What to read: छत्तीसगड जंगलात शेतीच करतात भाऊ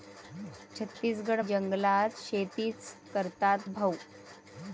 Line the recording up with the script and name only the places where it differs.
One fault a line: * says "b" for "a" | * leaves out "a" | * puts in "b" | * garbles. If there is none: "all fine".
all fine